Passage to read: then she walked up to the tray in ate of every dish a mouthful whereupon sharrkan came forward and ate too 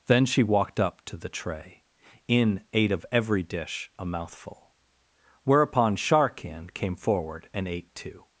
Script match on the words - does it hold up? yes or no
yes